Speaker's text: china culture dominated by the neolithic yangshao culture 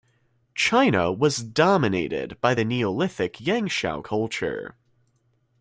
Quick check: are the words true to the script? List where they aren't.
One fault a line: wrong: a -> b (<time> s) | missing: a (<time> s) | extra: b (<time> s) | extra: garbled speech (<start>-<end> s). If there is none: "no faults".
wrong: culture -> was (1.1 s)